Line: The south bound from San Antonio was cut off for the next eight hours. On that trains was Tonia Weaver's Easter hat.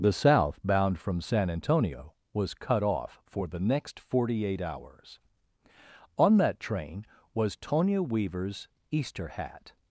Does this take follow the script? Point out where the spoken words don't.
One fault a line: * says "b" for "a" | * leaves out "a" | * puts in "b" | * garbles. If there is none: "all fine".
* puts in "forty"
* says "train" for "trains"